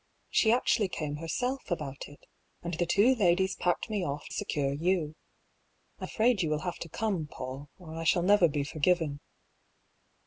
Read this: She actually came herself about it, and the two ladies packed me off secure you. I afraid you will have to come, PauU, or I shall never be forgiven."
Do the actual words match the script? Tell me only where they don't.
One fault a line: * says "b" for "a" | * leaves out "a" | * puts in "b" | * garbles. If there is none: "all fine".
all fine